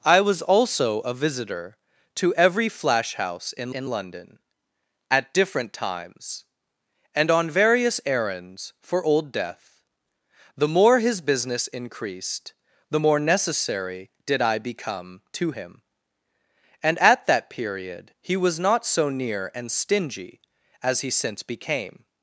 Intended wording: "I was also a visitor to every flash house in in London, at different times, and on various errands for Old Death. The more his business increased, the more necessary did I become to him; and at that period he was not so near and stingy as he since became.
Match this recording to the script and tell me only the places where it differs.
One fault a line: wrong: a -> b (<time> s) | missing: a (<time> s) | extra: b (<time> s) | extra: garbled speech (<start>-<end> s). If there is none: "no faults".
no faults